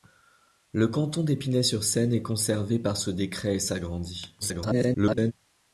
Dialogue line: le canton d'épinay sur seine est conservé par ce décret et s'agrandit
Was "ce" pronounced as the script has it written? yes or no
yes